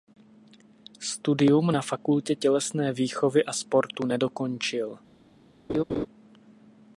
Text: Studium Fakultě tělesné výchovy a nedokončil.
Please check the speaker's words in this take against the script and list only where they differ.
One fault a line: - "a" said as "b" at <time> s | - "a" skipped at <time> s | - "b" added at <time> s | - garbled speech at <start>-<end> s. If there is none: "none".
- "na" added at 1.7 s
- "sportu" added at 3.5 s